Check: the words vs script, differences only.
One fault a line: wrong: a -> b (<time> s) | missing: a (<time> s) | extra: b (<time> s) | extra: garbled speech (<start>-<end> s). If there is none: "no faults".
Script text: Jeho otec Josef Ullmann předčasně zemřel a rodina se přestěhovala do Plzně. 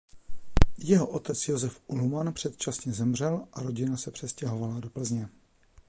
no faults